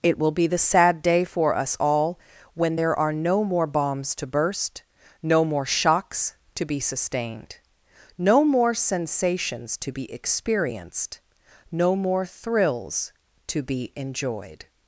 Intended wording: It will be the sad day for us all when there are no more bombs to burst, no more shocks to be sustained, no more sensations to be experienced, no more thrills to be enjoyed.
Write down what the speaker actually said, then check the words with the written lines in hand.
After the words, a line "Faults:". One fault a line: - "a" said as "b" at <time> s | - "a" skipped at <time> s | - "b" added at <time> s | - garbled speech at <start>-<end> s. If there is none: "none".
It will be the sad day for us all when there are no more bombs to burst, no more shocks to be sustained, no more sensations to be experienced, no more thrills to be enjoyed.
Faults:
none